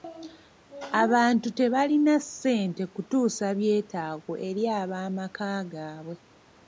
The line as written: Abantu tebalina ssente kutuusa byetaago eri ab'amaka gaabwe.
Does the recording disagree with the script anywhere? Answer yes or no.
no